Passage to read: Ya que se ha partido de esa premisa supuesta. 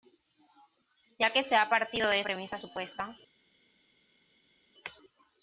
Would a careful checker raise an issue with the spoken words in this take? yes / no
yes